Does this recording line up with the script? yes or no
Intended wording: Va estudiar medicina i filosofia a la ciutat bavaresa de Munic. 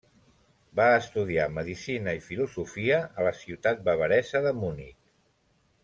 yes